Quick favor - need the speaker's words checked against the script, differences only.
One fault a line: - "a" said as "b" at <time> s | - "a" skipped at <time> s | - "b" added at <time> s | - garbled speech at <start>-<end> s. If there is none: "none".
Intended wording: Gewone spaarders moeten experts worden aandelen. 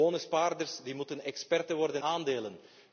none